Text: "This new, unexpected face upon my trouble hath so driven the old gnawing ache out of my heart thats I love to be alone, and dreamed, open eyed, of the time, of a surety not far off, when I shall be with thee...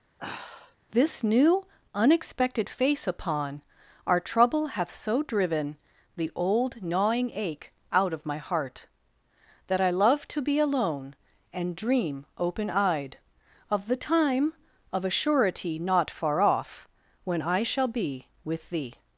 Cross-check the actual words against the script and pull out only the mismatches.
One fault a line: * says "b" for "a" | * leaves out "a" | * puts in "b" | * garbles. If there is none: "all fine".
* says "our" for "my"
* says "that" for "thats"
* says "dream" for "dreamed"